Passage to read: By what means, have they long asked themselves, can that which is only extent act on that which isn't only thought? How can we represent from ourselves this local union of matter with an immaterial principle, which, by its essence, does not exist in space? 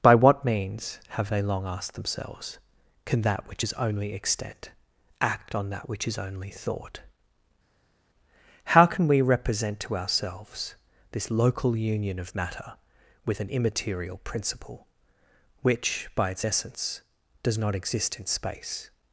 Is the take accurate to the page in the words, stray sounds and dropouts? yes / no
no